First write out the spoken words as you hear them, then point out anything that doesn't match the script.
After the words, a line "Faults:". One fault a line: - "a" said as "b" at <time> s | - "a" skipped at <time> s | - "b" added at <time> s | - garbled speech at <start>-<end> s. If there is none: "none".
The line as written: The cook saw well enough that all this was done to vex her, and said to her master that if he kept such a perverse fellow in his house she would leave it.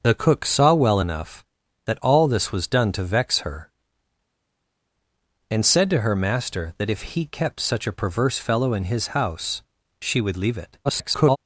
The cook saw well enough that all this was done to vex her, and said to her master that if he kept such a perverse fellow in his house she would leave it. [garbled]
Faults:
- garbled speech at 10.8-11.4 s